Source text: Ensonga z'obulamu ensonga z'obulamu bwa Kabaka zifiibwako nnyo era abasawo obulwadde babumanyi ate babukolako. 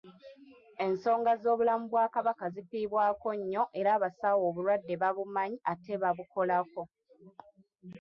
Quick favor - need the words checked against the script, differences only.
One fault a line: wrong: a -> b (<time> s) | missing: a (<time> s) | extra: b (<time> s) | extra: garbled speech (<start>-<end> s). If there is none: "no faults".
missing: ensonga z'obulamu (1.9 s)